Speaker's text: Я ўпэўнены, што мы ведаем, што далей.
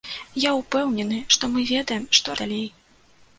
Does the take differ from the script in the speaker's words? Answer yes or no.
no